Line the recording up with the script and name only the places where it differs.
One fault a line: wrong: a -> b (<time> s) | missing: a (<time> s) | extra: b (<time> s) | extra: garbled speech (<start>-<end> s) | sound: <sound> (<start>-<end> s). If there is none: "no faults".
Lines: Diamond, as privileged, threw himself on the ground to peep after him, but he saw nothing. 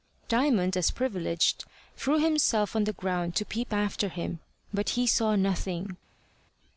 no faults